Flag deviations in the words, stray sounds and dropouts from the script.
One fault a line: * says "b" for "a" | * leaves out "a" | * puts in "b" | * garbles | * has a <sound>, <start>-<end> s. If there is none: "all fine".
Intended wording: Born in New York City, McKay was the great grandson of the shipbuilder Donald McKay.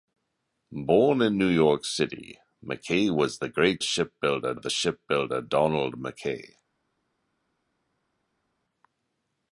* says "shipbuilder" for "grandson"